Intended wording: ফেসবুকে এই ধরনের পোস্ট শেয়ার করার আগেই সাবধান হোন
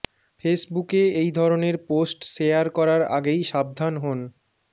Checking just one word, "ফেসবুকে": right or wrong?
right